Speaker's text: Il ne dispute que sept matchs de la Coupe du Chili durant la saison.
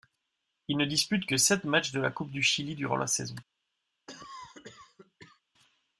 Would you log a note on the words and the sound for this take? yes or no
yes